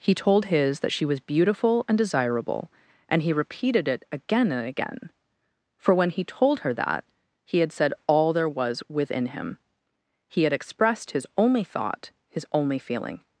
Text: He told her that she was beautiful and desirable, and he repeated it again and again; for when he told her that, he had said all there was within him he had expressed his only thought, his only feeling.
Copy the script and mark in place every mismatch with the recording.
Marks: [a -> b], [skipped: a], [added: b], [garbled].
He told [her -> his] that she was beautiful and desirable, and he repeated it again and again; for when he told her that, he had said all there was within him he had expressed his only thought, his only feeling.